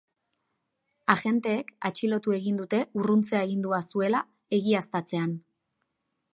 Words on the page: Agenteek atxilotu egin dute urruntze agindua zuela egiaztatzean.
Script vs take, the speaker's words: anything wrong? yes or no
no